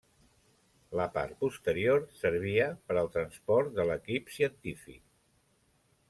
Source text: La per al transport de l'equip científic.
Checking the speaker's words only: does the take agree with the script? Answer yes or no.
no